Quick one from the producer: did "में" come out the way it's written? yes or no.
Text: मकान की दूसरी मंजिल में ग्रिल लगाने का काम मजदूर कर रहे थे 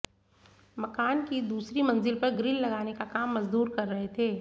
no